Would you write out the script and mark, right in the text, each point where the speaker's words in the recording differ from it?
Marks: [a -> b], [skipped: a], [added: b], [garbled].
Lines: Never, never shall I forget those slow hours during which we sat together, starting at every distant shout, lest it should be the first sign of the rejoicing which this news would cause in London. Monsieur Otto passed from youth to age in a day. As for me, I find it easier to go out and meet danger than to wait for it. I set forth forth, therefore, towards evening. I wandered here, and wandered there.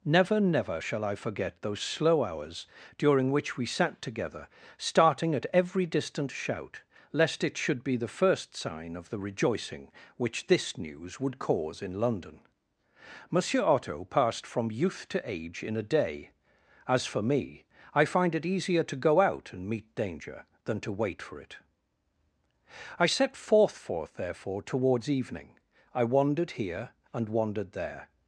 Never, never shall I forget those slow hours during which we sat together, starting at every distant shout, lest it should be the first sign of the rejoicing which this news would cause in London. Monsieur Otto passed from youth to age in a day. As for me, I find it easier to go out and meet danger than to wait for it. I set forth forth, therefore, towards evening. I wandered here, and wandered there.